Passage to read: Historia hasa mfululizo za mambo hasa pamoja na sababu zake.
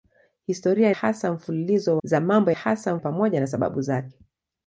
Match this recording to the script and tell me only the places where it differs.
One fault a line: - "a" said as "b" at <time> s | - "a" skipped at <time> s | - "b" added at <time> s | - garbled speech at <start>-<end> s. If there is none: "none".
none